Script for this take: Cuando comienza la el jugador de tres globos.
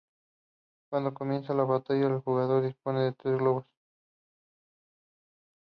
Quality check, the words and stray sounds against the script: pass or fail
fail